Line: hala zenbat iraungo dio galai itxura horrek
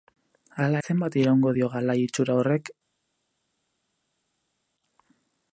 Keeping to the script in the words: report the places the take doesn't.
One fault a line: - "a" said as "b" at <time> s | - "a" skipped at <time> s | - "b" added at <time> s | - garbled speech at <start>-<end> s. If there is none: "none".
none